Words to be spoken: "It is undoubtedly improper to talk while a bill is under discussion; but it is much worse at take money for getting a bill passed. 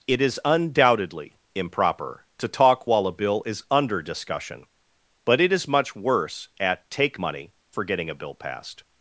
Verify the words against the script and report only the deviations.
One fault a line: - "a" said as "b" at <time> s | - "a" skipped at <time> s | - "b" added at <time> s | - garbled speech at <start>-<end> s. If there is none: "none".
none